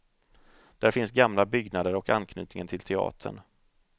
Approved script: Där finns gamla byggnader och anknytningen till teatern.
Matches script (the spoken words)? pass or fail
pass